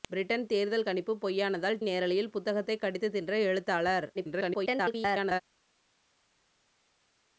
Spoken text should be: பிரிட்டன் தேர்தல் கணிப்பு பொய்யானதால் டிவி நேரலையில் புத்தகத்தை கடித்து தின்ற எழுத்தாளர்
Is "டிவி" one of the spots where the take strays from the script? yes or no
yes